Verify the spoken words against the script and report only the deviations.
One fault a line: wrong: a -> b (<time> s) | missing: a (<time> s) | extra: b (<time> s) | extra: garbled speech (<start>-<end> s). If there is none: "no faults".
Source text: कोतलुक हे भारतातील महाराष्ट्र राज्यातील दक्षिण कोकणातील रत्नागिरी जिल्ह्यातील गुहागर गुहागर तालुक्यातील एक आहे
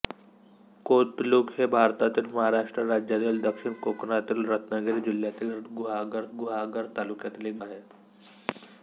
no faults